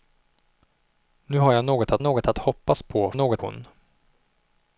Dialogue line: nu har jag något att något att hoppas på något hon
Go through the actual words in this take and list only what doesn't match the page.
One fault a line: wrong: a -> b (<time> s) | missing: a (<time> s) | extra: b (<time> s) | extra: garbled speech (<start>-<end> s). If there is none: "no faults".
no faults